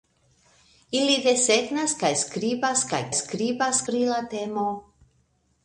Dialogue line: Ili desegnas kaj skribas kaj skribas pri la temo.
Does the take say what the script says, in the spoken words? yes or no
yes